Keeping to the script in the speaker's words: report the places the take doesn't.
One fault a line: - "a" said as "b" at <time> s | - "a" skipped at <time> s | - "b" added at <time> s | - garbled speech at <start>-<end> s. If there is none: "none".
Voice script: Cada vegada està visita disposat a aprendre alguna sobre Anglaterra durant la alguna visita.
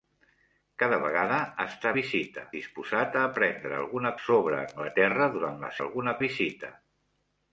none